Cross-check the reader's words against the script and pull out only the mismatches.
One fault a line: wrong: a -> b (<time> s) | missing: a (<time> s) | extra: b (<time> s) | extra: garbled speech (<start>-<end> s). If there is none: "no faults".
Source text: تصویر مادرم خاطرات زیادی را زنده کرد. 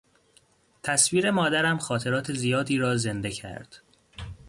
no faults